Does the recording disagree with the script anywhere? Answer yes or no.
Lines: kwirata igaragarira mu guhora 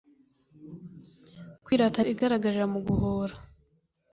no